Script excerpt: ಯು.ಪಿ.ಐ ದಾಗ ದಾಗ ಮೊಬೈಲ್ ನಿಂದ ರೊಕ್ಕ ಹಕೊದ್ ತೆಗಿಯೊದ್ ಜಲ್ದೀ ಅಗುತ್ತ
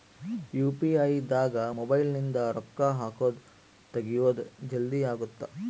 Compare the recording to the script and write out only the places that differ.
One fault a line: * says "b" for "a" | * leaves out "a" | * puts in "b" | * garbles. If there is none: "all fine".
* leaves out "ದಾಗ"